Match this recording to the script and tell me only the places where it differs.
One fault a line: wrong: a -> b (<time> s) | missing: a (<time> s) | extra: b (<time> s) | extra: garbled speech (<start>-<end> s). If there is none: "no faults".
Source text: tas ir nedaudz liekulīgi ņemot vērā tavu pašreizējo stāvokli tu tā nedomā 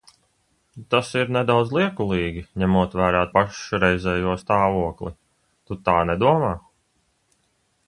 missing: tavu (3.2 s)